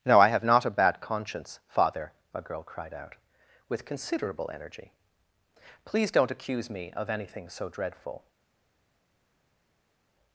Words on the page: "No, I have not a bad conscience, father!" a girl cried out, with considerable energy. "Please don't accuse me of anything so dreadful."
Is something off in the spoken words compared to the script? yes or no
no